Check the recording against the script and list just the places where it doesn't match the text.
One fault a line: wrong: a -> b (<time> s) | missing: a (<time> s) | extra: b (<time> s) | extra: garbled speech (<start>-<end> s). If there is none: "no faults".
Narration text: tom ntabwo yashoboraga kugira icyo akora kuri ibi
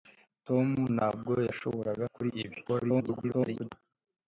missing: kugira icyo akora (2.0 s)
extra: garbled speech (2.7-3.7 s)